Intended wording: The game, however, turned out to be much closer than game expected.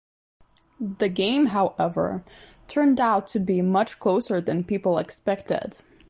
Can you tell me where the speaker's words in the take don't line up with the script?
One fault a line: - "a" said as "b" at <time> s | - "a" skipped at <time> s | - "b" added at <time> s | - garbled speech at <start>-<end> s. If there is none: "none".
- "game" said as "people" at 4.6 s